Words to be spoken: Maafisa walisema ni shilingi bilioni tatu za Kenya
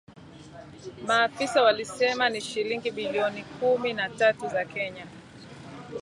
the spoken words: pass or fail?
fail